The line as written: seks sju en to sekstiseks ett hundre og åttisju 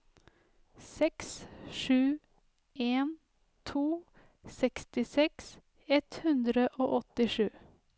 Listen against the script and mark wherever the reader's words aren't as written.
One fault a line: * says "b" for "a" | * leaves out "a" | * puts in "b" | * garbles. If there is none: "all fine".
all fine